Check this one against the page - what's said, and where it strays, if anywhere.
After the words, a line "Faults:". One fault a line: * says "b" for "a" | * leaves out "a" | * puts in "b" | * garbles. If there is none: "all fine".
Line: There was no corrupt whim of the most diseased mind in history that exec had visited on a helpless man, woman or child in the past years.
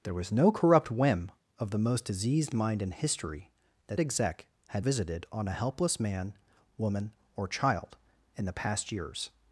There was no corrupt whim of the most diseased mind in history that exec had visited on a helpless man, woman or child in the past years.
Faults:
all fine